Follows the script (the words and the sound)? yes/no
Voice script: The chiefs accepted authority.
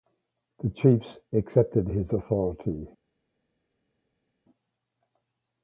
no